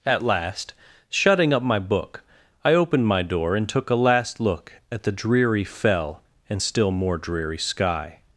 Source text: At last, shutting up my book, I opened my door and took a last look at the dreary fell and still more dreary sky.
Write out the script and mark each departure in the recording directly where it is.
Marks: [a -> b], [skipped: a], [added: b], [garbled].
At last, shutting up my book, I opened my door and took a last look at the dreary fell and still more dreary sky.